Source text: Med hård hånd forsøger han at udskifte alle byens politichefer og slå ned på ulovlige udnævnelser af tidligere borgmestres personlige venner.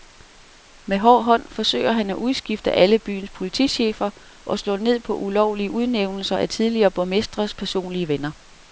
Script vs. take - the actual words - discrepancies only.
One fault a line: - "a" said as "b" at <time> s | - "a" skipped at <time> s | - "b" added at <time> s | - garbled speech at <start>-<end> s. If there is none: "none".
none